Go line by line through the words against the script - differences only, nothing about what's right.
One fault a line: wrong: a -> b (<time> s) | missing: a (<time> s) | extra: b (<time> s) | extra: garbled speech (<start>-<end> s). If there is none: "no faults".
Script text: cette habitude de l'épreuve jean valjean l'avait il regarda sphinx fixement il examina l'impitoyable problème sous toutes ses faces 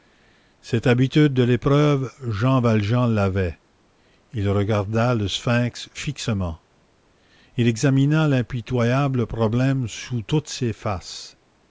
extra: le (5.1 s)